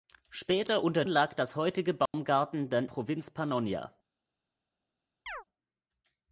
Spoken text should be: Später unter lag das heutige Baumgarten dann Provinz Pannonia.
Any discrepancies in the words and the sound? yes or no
yes